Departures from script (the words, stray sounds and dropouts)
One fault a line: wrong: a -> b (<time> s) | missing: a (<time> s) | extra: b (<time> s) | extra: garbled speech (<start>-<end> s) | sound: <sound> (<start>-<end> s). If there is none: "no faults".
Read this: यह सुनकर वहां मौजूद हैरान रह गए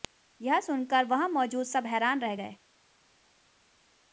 extra: सब (1.6 s)